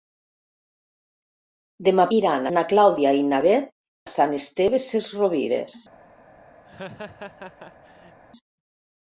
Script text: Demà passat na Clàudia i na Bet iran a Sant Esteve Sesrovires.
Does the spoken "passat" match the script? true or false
false